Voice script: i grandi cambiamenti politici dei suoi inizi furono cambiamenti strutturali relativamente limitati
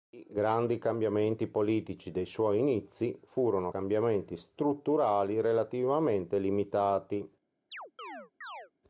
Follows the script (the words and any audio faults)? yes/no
no